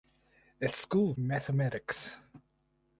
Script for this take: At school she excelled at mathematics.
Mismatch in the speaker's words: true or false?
true